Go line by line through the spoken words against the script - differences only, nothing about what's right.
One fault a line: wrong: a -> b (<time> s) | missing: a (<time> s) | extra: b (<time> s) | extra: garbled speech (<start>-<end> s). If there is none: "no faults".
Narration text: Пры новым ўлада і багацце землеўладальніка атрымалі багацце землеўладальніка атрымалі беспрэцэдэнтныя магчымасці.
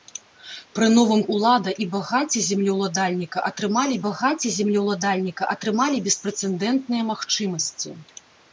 no faults